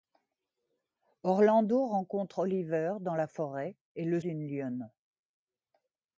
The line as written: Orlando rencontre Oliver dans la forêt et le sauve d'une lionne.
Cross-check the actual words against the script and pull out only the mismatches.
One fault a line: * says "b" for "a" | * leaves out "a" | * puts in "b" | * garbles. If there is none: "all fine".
* leaves out "sauve"